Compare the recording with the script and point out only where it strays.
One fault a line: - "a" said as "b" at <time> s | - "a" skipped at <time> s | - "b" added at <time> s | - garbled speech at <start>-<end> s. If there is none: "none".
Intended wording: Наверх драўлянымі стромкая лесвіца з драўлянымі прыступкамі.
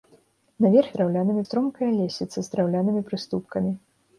none